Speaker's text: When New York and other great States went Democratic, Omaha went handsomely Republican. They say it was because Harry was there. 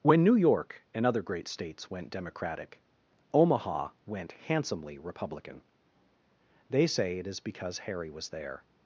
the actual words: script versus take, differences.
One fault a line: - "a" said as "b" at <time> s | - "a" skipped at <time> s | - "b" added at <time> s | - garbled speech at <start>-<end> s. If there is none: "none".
- "was" said as "is" at 7.3 s